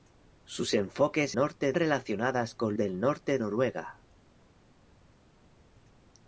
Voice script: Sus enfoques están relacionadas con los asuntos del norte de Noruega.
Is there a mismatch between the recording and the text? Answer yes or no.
yes